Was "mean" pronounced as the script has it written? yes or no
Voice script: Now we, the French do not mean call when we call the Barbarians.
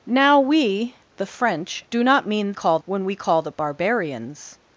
yes